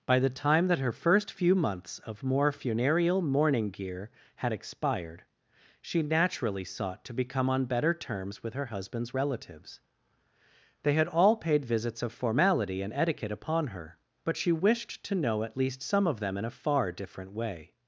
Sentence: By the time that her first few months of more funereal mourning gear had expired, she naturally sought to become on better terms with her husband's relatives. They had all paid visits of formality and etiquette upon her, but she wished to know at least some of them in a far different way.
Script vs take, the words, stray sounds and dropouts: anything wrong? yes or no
no